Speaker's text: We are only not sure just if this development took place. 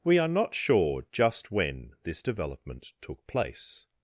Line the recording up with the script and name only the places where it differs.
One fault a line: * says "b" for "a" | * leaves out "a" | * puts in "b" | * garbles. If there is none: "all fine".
* leaves out "only"
* says "when" for "if"